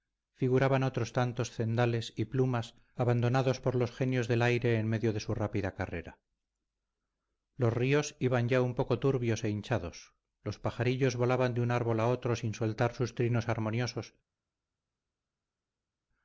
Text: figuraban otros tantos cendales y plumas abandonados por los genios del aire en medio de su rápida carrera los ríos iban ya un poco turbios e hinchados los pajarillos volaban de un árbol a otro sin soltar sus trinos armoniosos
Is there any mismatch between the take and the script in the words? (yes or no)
no